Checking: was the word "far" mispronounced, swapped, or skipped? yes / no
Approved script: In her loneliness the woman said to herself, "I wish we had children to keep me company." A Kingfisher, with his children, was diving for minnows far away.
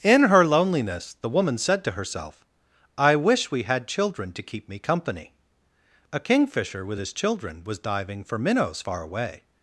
no